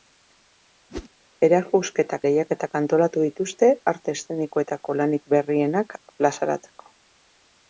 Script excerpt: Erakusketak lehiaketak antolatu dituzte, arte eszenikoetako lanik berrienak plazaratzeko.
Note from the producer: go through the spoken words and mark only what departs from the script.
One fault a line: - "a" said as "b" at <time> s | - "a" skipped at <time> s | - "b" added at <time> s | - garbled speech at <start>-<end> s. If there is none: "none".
none